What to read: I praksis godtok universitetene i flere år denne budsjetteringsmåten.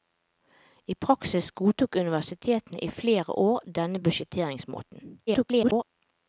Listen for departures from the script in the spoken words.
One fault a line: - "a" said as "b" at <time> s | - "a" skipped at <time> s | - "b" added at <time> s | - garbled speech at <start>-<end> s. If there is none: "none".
- garbled speech at 5.3-5.8 s